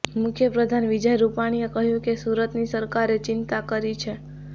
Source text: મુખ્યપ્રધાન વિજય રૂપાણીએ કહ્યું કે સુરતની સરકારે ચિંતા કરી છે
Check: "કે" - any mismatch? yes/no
no